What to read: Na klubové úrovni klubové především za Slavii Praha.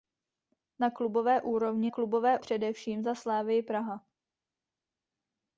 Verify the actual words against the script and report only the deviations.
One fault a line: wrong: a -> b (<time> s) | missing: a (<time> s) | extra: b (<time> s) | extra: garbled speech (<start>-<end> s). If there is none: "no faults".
no faults